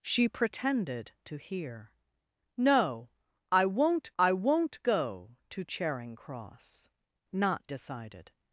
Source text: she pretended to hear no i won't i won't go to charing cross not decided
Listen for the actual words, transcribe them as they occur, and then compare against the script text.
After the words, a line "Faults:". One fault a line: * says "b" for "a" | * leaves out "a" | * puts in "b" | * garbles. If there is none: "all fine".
she pretended to hear no i won't i won't go to charing cross not decided
Faults:
all fine